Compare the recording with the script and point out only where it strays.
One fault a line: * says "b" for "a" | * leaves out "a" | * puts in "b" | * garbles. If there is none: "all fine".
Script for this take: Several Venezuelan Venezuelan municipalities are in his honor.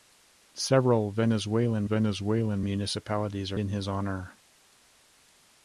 all fine